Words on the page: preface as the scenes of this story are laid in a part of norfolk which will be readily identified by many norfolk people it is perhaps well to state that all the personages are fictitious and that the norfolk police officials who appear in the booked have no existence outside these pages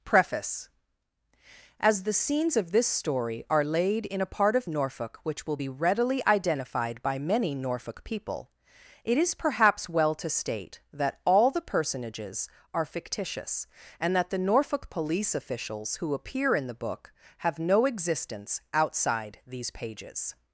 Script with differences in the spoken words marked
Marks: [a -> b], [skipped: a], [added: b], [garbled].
preface as the scenes of this story are laid in a part of norfolk which will be readily identified by many norfolk people it is perhaps well to state that all the personages are fictitious and that the norfolk police officials who appear in the [booked -> book] have no existence outside these pages